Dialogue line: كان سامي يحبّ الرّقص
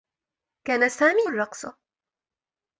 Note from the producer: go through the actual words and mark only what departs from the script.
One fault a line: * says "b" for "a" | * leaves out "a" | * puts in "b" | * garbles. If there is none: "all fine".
* leaves out "يحبّ"